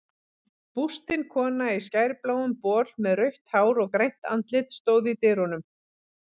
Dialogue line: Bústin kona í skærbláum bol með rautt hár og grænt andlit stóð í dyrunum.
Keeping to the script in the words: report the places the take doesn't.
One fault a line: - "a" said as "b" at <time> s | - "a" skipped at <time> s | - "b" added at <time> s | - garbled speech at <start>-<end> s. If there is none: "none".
none